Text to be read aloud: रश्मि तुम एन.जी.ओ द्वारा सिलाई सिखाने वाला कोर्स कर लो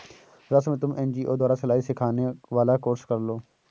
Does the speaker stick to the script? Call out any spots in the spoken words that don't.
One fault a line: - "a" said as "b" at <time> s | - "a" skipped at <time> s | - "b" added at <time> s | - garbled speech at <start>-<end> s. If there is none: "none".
none